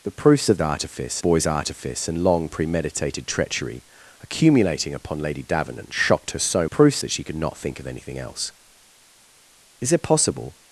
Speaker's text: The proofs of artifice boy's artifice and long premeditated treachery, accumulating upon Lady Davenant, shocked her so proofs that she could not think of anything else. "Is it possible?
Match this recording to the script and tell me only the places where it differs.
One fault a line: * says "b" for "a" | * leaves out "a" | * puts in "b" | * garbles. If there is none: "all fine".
all fine